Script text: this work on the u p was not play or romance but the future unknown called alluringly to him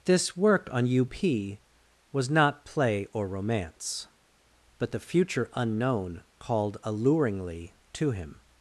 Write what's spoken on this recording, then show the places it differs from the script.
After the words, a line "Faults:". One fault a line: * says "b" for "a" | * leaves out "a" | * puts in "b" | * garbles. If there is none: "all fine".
this work on u p was not play or romance but the future unknown called alluringly to him
Faults:
* leaves out "the"